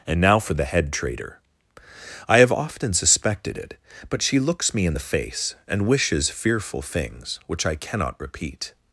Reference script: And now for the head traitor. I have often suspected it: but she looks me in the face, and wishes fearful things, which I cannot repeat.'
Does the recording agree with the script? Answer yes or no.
yes